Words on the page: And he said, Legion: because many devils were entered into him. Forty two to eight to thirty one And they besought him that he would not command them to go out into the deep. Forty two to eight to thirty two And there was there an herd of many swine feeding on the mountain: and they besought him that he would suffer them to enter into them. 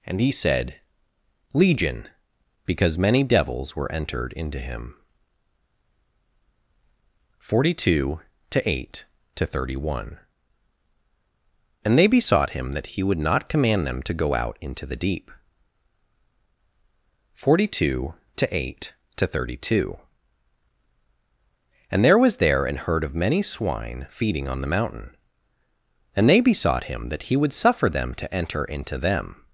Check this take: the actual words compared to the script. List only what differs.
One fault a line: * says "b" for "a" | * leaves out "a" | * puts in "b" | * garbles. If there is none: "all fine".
all fine